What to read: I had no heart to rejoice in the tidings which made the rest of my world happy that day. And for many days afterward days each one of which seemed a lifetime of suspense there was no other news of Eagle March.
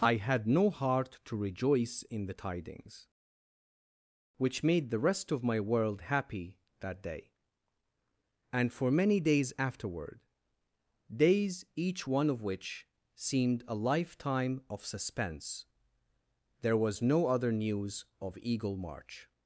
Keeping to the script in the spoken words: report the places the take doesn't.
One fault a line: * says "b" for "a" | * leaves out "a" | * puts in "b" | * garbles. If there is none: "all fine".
all fine